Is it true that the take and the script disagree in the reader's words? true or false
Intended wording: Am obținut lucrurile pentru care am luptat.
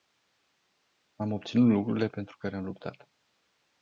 false